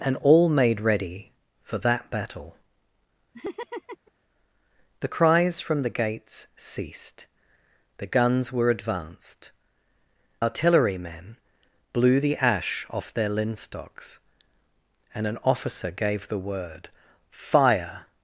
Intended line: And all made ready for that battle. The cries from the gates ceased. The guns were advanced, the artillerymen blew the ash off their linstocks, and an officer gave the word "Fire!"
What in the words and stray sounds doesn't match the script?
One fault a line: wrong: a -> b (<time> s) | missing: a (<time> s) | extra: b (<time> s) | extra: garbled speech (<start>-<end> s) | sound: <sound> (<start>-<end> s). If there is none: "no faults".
sound: laugh (3.3-4.1 s)
missing: the (9.5 s)